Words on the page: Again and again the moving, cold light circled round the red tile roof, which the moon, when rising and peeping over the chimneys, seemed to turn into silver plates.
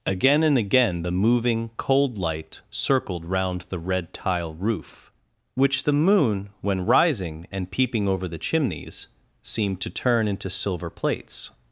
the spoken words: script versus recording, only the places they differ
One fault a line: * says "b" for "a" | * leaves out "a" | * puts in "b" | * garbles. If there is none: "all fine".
all fine